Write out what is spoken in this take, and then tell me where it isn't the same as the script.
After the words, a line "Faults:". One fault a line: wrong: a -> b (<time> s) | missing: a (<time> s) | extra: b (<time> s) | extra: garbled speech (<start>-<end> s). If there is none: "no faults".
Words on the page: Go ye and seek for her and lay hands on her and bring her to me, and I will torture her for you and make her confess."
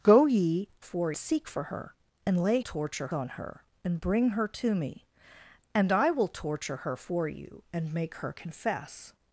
Go ye for seek for her and lay torture on her and bring her to me, and I will torture her for you and make her confess."
Faults:
wrong: and -> for (0.8 s)
wrong: hands -> torture (2.6 s)